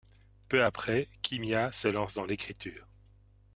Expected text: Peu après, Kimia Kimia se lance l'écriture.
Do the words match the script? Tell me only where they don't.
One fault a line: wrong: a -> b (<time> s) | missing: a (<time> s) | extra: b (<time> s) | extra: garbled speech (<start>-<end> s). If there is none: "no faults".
missing: Kimia (1.7 s)
extra: dans (2.1 s)